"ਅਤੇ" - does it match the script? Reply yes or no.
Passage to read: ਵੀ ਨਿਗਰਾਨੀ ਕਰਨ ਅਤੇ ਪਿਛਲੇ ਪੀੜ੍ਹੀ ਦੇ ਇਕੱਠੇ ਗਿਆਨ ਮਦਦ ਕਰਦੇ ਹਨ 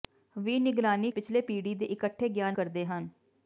no